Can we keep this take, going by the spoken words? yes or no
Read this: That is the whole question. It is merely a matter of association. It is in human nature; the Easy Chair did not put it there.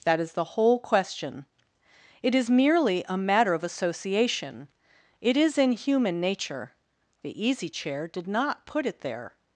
yes